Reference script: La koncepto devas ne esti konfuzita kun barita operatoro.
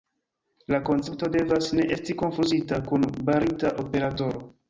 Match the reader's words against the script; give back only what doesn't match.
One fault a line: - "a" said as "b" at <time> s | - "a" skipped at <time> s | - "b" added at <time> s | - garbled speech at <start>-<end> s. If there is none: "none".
none